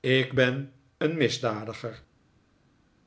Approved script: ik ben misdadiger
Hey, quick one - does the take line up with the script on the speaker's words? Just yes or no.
no